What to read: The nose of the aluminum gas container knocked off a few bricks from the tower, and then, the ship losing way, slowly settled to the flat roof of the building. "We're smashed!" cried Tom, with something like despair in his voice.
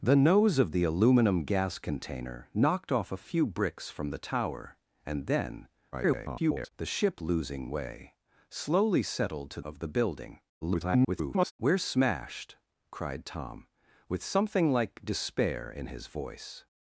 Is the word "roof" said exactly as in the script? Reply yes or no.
no